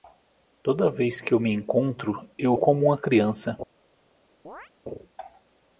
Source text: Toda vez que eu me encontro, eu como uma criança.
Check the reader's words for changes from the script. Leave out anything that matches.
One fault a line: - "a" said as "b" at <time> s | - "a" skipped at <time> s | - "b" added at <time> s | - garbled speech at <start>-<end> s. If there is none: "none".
none